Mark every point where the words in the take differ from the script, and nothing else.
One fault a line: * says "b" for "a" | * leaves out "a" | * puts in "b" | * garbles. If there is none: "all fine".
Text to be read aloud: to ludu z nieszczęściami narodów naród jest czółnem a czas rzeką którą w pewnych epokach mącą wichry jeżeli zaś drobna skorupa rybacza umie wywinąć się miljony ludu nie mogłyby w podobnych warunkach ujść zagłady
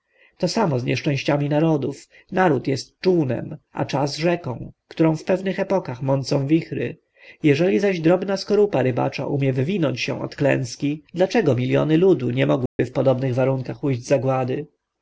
* says "samo" for "ludu"
* puts in "od klęski dlaczego"